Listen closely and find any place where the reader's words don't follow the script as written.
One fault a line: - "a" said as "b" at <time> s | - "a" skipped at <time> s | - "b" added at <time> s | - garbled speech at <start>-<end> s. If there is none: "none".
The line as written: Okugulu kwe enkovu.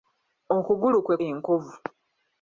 none